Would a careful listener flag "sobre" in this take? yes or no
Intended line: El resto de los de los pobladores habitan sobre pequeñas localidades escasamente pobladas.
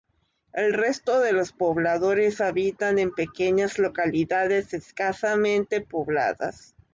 yes